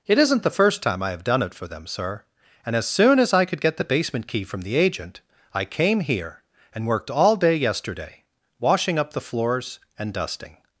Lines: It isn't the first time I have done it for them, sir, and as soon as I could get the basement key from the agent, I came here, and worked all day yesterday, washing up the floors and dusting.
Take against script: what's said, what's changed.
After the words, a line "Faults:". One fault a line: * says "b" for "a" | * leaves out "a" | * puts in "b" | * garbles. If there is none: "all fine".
It isn't the first time I have done it for them, sir, and as soon as I could get the basement key from the agent, I came here, and worked all day yesterday, washing up the floors and dusting.
Faults:
all fine